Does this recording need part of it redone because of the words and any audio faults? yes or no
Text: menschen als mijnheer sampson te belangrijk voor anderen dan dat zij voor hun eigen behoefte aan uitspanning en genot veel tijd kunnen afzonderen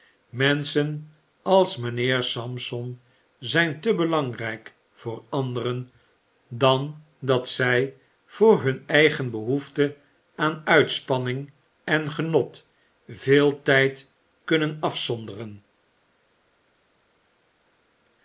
yes